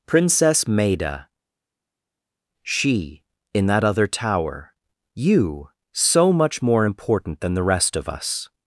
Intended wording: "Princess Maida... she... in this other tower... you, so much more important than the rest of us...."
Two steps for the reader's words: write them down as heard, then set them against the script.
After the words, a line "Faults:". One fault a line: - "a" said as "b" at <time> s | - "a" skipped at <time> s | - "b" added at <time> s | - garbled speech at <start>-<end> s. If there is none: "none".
"Princess Maida... she... in that other tower... you, so much more important than the rest of us...."
Faults:
- "this" said as "that" at 3.7 s